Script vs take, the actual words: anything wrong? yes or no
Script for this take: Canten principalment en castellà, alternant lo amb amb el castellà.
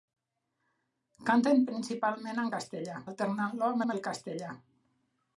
no